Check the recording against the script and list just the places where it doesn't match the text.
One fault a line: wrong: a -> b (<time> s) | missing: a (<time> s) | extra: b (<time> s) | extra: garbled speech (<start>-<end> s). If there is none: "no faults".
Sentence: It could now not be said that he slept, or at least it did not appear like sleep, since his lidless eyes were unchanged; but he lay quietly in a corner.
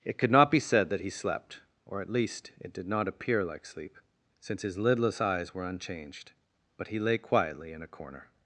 missing: now (0.3 s)